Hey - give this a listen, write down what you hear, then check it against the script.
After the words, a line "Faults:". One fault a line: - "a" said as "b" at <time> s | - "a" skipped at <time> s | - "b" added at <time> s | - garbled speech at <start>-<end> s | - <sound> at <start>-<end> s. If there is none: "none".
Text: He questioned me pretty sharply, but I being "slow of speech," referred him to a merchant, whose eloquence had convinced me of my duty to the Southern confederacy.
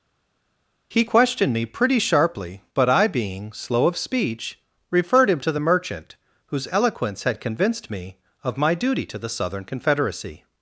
He questioned me pretty sharply, but I being "slow of speech," referred him to the merchant, whose eloquence had convinced me of my duty to the Southern confederacy.
Faults:
- "a" said as "the" at 5.5 s